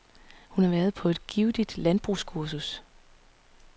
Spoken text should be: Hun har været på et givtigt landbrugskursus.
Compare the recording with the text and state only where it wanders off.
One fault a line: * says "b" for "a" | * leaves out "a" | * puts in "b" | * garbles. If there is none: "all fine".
all fine